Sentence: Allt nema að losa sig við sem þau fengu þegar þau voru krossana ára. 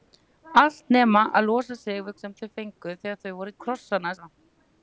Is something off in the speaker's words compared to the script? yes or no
no